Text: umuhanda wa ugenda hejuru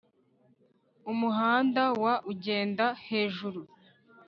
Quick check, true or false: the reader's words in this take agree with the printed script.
true